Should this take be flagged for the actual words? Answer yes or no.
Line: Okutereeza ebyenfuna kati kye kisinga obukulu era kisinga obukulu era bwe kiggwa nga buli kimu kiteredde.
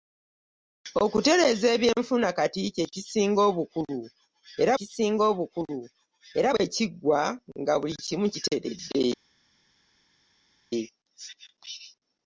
no